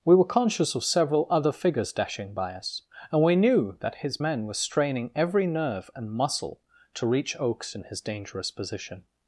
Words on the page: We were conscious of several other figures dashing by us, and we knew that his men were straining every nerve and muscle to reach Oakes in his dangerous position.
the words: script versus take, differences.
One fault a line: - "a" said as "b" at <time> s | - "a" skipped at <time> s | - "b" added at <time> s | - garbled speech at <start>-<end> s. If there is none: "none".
none